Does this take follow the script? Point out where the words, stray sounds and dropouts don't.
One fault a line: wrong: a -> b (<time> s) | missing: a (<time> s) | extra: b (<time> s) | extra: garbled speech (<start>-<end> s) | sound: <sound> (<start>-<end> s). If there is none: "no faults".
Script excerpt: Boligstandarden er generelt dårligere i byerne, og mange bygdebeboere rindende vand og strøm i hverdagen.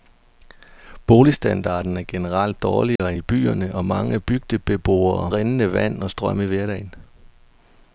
sound: dropout (3.0-3.0 s)